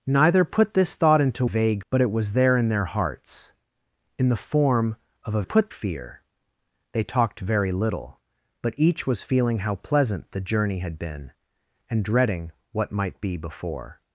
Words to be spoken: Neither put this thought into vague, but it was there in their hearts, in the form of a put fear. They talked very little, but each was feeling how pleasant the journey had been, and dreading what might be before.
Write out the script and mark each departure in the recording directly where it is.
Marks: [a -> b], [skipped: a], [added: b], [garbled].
Neither put this thought into vague, but it was there in their hearts, in the form of a put fear. They talked very little, but each was feeling how pleasant the journey had been, and dreading what might be before.